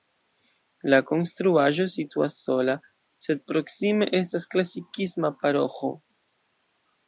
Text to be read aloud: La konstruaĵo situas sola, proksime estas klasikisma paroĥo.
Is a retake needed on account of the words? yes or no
yes